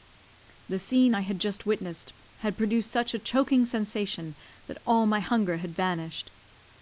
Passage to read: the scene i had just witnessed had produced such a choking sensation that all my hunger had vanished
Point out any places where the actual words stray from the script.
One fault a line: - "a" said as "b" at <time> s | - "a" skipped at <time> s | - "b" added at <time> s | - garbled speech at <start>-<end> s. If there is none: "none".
none